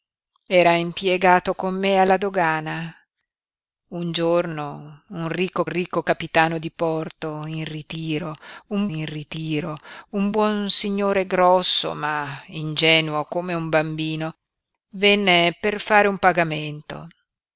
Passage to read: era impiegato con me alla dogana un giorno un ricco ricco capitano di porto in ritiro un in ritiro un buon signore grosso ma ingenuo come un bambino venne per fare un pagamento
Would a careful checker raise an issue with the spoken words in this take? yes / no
no